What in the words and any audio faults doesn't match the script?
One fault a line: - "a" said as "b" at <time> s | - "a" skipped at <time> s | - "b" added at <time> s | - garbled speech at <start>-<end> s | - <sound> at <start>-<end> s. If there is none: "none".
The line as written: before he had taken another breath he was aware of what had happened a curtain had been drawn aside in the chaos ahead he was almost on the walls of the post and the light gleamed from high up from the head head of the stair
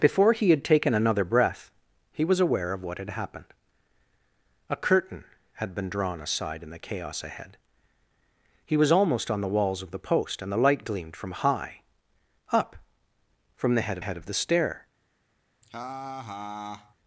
- laugh at 15.6-16.9 s